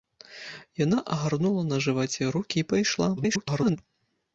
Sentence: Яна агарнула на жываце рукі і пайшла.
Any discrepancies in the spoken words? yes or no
yes